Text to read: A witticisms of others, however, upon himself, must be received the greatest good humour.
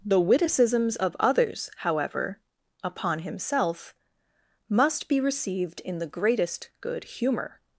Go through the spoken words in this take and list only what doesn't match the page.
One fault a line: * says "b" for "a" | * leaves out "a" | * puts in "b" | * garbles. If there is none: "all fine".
* says "The" for "A"
* puts in "in"